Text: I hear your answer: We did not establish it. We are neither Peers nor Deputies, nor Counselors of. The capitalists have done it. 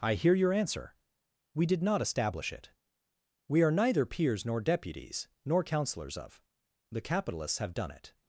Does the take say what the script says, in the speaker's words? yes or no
yes